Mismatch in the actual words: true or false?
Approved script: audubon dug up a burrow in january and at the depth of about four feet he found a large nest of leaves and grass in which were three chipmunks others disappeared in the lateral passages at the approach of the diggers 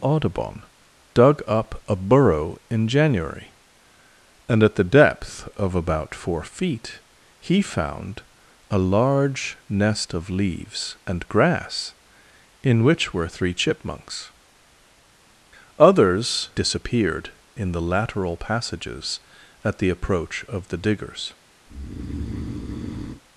false